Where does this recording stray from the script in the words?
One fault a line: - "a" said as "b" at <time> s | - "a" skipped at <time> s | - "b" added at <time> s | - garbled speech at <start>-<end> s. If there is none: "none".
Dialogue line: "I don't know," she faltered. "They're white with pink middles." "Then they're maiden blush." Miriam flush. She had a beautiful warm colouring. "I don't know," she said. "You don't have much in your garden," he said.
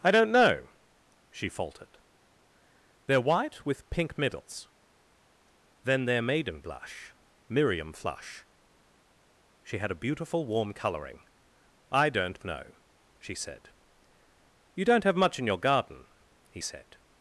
none